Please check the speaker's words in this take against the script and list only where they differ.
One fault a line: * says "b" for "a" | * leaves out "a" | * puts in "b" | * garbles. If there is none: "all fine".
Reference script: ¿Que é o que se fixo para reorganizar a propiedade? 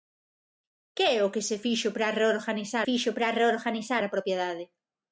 * puts in "fixo para reorganizar"